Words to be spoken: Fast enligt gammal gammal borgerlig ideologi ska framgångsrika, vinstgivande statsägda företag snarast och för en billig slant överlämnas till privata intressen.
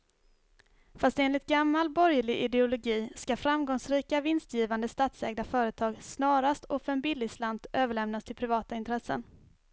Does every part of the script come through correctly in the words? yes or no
no